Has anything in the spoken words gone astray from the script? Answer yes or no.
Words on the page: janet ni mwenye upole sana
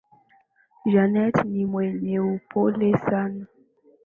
no